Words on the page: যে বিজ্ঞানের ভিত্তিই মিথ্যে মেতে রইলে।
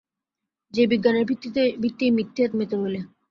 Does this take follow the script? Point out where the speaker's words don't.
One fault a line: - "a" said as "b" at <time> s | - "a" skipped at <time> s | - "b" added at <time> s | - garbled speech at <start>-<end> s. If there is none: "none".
none